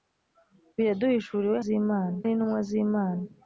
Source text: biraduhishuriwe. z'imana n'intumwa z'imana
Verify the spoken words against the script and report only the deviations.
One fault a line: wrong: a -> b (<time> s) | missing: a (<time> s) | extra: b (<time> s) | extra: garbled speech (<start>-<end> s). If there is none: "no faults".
no faults